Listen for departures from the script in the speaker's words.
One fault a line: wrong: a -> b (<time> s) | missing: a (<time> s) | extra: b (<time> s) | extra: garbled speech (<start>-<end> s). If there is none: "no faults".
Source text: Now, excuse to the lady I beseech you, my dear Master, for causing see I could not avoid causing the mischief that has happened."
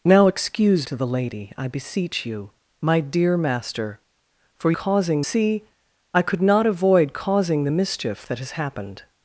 no faults